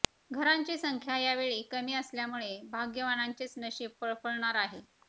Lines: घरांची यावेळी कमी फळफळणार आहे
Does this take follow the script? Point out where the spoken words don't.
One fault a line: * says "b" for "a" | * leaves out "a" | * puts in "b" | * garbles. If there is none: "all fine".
* puts in "संख्या"
* puts in "असल्यामुळे भाग्यवानांचेच नशीब"